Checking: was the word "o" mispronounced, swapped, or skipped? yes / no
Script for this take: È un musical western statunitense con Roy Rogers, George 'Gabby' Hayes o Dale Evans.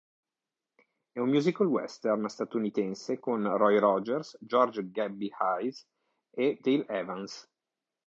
yes